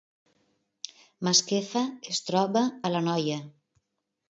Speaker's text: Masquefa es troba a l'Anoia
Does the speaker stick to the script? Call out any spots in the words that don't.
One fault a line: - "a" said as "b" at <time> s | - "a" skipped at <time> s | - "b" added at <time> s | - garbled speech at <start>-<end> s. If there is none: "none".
none